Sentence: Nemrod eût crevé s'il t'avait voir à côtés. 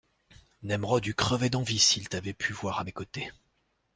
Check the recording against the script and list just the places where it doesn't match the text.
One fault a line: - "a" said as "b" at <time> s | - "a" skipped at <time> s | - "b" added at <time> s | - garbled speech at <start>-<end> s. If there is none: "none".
- "d'envie" added at 1.5 s
- "pu" added at 2.3 s
- "mes" added at 2.8 s